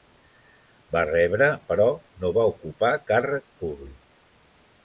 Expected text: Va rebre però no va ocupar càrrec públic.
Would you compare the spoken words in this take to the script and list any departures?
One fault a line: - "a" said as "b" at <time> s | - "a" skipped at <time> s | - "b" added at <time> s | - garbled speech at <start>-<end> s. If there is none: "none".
none